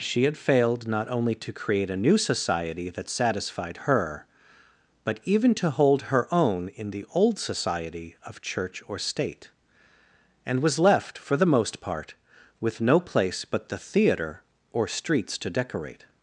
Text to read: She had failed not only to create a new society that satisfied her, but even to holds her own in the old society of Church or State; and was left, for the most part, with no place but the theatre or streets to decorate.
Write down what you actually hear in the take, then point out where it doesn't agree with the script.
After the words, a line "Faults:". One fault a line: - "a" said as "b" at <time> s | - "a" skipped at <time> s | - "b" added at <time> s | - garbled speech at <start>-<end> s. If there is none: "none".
She had failed not only to create a new society that satisfied her, but even to hold her own in the old society of Church or State; and was left, for the most part, with no place but the theatre or streets to decorate.
Faults:
- "holds" said as "hold" at 5.7 s